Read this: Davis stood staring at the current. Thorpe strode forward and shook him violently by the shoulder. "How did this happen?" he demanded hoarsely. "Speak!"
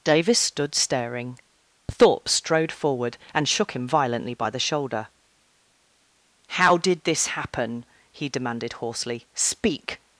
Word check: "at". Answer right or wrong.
wrong